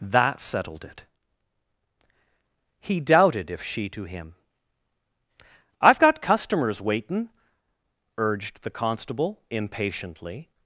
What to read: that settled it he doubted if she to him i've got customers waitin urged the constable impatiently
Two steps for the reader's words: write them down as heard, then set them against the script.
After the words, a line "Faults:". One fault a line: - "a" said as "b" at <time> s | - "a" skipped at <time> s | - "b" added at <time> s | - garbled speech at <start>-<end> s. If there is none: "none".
that settled it he doubted if she to him i've got customers waitin urged the constable impatiently
Faults:
none